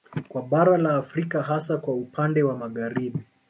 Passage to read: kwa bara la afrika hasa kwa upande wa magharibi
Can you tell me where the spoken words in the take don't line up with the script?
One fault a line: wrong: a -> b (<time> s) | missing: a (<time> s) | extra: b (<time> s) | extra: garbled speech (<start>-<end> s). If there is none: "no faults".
no faults